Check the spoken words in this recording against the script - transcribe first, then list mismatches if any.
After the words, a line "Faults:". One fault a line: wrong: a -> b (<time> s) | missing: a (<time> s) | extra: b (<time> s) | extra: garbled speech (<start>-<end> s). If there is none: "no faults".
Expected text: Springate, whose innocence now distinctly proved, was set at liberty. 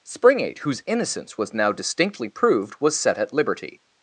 Springate, whose innocence was now distinctly proved, was set at liberty.
Faults:
extra: was (1.4 s)